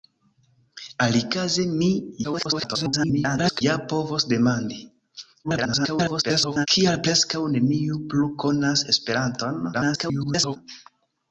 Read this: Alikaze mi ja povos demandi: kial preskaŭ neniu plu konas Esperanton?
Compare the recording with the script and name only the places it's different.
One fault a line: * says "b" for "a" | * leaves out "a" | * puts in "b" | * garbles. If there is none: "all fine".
* garbles
* garbles
* garbles